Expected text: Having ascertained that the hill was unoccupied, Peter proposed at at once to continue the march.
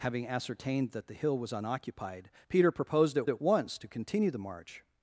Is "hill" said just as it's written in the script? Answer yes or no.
yes